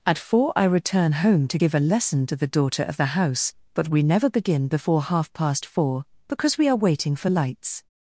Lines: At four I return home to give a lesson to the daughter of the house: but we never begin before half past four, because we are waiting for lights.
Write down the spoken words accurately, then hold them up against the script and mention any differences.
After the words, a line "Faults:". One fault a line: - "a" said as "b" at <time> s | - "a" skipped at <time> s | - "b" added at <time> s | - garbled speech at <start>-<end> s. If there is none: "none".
At four I return home to give a lesson to the daughter of the house: but we never begin before half past four, because we are waiting for lights.
Faults:
none